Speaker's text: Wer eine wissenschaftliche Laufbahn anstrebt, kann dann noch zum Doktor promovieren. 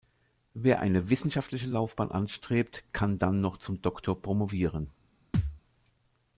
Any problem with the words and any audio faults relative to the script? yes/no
yes